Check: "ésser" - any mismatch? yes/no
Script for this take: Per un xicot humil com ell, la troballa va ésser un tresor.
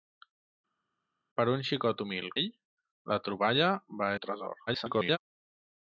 yes